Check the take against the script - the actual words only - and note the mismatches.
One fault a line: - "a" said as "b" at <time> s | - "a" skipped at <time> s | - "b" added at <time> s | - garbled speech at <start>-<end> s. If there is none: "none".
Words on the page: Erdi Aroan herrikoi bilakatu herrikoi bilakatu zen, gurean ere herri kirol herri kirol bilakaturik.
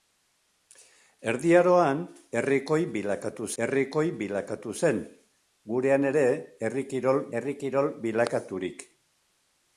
none